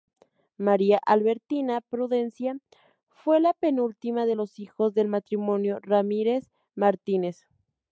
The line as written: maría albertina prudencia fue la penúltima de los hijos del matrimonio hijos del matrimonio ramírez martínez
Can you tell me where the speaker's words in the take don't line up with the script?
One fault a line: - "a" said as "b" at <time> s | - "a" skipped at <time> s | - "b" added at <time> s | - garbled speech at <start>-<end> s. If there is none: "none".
- "hijos del matrimonio" skipped at 5.8 s